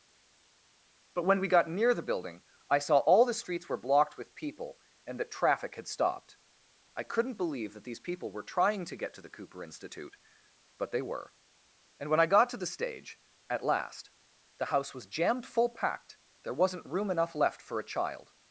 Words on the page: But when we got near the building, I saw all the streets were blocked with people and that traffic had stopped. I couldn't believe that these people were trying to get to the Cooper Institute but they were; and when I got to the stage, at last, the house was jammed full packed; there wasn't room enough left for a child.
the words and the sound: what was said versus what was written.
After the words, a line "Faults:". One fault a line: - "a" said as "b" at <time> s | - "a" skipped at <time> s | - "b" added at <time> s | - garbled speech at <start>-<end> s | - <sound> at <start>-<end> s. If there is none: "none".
But when we got near the building, I saw all the streets were blocked with people and that traffic had stopped. I couldn't believe that these people were trying to get to the Cooper Institute but they were; and when I got to the stage, at last, the house was jammed full packed; there wasn't room enough left for a child.
Faults:
none